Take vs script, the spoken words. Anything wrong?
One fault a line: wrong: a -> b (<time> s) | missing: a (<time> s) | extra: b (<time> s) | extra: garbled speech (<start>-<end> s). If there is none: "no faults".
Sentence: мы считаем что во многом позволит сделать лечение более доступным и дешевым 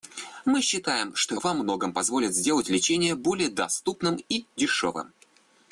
no faults